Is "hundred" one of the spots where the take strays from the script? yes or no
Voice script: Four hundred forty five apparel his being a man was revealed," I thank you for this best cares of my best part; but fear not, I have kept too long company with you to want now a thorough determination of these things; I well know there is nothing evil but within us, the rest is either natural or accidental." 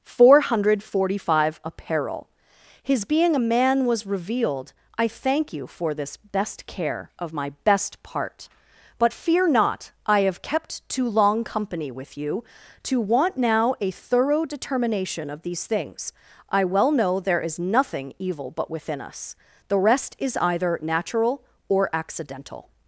no